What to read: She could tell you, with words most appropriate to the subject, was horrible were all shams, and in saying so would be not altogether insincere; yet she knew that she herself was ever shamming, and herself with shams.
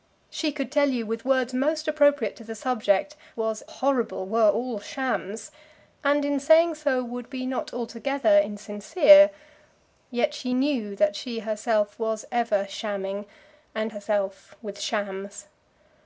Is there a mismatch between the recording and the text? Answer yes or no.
no